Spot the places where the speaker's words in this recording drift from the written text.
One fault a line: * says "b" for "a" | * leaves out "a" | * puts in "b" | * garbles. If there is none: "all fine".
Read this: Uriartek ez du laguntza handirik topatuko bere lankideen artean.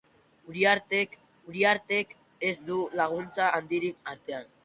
* puts in "uriartek"
* leaves out "topatuko bere lankideen"